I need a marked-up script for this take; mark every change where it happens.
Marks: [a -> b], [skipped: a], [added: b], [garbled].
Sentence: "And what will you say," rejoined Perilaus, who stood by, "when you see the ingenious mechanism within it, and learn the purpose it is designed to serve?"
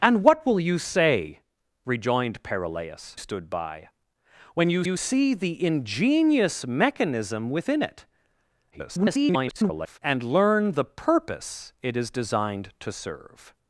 "And what will you say," rejoined Perilaus, [skipped: who] stood by, "when you [added: you] see the ingenious mechanism within it, [garbled] and learn the purpose it is designed to serve?"